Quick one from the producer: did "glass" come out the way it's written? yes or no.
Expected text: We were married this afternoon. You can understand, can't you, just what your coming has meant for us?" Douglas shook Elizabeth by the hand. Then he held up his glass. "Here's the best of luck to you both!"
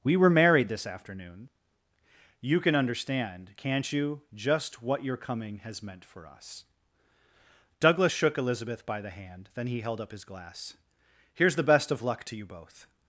yes